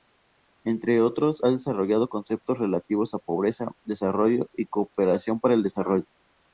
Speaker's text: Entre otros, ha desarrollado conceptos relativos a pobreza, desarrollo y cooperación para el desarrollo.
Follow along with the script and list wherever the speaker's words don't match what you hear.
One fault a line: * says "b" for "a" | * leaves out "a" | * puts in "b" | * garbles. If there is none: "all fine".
all fine